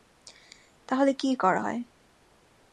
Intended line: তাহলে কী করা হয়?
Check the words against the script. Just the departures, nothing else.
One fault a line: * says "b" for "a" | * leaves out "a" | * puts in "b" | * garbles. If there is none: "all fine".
all fine